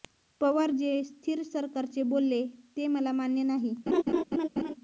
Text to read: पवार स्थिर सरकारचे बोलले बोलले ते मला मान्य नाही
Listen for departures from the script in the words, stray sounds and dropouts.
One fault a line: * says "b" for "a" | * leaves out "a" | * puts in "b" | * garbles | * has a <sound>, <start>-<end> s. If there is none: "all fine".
* puts in "जे"
* leaves out "बोलले"
* has a laugh, 3.9-4.7 s